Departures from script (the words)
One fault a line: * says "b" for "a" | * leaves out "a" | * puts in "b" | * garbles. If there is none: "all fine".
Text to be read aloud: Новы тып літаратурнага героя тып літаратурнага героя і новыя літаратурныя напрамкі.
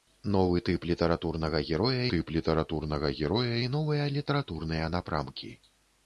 all fine